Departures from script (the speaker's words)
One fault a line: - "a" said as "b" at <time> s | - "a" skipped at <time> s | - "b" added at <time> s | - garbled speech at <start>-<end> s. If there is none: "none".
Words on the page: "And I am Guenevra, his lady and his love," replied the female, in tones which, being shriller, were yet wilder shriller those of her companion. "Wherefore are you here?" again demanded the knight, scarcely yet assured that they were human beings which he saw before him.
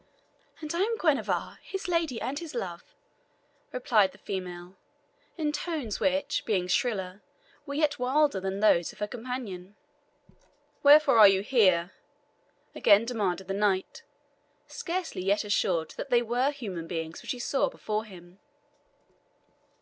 - "shriller" said as "than" at 8.4 s